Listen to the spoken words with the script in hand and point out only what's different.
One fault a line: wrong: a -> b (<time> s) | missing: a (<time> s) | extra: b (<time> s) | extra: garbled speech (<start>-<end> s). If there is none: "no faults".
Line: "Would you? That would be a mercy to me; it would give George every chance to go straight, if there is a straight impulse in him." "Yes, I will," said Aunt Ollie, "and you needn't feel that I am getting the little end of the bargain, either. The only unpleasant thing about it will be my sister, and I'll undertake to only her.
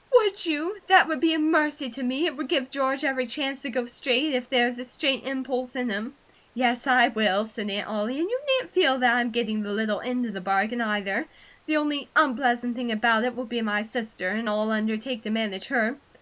wrong: only -> manage (15.3 s)